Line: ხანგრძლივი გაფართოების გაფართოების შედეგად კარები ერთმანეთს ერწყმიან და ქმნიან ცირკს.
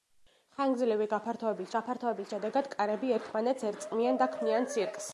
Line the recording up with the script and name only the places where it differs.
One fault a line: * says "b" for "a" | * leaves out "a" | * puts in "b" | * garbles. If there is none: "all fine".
all fine